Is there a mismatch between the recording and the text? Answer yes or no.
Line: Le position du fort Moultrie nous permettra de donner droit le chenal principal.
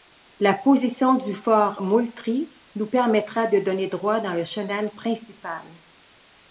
yes